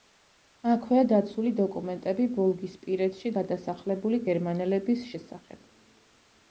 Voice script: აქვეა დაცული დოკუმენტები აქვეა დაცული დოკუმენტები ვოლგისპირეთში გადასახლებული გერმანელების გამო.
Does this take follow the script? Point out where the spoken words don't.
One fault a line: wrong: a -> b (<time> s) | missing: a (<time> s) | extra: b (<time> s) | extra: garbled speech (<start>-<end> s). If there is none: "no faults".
missing: აქვეა დაცული დოკუმენტები (2.3 s)
wrong: გამო -> შესახებ (5.1 s)